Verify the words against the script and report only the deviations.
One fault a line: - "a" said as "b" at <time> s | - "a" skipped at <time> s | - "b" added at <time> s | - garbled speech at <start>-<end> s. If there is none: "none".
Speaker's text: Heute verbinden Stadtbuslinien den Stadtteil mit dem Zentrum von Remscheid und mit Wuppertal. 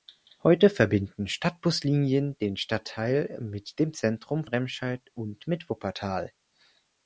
- "von" skipped at 4.5 s